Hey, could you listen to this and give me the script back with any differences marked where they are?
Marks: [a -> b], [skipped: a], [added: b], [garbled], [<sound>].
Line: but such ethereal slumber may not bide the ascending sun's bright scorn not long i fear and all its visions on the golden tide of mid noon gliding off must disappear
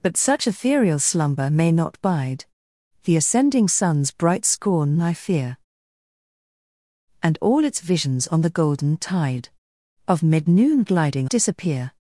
but such ethereal slumber may not bide the ascending sun's bright scorn [skipped: not long] i fear and all its visions on the golden tide of mid noon gliding [skipped: off must] disappear